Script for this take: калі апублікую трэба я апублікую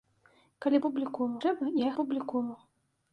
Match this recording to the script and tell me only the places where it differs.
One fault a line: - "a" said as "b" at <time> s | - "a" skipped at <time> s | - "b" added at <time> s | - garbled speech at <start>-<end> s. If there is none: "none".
none